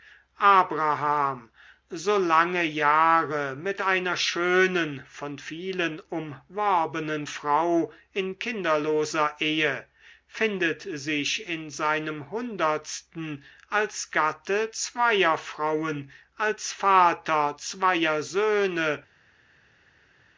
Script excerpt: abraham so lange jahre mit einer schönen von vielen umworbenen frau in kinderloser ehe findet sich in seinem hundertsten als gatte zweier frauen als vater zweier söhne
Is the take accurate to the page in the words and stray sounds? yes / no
yes